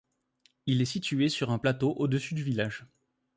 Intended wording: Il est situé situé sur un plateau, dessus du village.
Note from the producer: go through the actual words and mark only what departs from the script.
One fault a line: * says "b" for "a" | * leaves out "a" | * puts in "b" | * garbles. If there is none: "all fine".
* leaves out "situé"
* puts in "au"